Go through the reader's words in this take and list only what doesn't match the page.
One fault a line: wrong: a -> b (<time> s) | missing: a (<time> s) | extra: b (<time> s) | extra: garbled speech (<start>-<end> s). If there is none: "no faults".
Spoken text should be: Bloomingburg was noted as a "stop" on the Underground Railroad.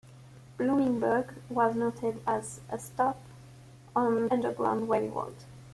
missing: the (4.3 s)